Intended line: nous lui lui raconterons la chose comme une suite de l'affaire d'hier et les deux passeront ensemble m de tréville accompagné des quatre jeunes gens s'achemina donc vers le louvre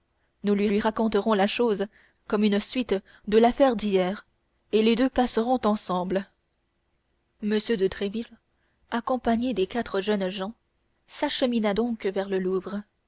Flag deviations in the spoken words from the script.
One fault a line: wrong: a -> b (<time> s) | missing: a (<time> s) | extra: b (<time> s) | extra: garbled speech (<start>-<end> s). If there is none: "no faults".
no faults